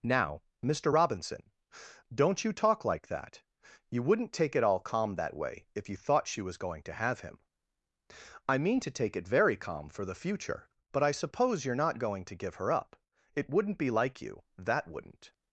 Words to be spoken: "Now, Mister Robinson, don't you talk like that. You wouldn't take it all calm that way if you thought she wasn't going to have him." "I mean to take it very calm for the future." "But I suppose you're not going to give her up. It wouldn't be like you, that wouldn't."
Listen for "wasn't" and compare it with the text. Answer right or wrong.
wrong